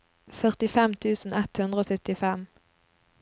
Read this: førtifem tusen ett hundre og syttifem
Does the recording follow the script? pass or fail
pass